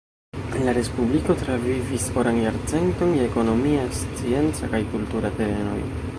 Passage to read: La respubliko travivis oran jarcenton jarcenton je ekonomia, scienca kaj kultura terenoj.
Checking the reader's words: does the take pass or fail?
fail